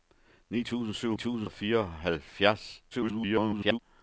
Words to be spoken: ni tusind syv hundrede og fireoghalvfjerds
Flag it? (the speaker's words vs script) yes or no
yes